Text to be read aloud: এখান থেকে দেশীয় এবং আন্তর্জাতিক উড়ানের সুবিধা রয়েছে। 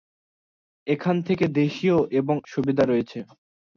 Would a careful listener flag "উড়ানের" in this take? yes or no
yes